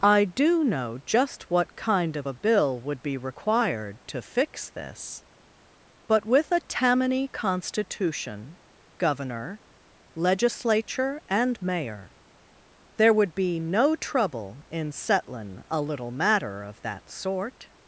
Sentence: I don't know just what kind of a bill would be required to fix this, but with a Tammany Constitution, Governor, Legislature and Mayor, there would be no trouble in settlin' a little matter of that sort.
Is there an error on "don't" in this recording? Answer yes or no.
yes